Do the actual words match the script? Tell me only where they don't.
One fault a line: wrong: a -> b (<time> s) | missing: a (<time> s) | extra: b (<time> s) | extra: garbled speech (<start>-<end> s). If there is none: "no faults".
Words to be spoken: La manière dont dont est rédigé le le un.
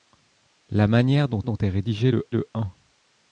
no faults